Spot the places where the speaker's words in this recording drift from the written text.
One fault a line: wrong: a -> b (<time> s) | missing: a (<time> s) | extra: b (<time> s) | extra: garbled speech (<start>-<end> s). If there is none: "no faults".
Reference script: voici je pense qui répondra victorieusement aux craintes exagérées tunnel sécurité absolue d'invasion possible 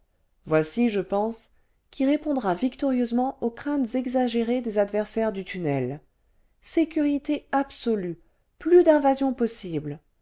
extra: des adversaires du (4.6 s)
extra: plus (8.6 s)